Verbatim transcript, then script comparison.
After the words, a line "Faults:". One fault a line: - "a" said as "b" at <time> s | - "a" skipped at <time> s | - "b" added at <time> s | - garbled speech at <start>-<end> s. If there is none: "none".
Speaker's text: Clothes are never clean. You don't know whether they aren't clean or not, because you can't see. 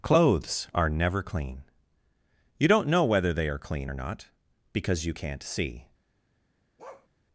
Clothes are never clean. You don't know whether they are clean or not, because you can't see.
Faults:
- "aren't" said as "are" at 3.5 s